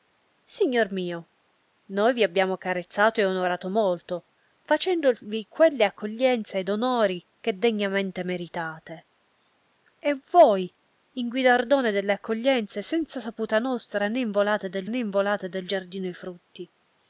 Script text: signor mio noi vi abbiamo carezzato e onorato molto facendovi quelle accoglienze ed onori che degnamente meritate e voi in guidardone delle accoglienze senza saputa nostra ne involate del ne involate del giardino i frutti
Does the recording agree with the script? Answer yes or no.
yes